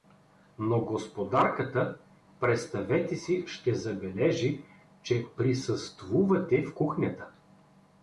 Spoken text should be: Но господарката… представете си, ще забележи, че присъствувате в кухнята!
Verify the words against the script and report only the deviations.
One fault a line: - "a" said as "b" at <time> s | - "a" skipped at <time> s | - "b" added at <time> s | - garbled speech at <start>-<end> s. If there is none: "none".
none